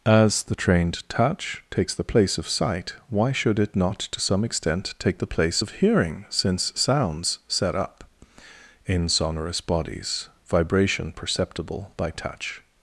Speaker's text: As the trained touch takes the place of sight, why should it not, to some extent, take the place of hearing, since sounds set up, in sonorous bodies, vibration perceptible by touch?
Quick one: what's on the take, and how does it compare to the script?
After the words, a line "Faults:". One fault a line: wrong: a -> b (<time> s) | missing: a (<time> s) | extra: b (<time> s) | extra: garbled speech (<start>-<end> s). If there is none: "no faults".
As the trained touch takes the place of sight, why should it not, to some extent, take the place of hearing, since sounds set up, in sonorous bodies, vibration perceptible by touch?
Faults:
no faults